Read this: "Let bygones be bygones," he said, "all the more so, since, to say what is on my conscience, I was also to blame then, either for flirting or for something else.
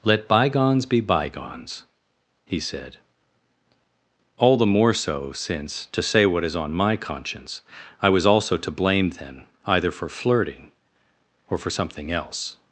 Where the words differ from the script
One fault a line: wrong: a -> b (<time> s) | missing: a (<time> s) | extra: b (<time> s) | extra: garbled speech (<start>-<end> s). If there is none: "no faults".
no faults